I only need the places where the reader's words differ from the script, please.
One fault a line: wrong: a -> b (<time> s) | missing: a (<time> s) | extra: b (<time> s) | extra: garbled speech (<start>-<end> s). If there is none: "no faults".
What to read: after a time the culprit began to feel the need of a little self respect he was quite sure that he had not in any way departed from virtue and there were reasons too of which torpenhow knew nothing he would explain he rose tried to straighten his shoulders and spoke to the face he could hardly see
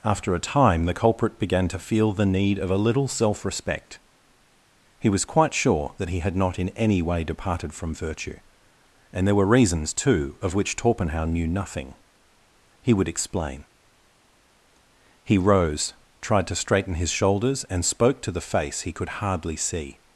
no faults